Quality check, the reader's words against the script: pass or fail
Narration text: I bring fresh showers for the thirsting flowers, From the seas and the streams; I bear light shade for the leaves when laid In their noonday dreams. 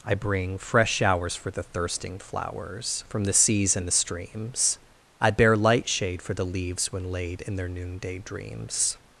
pass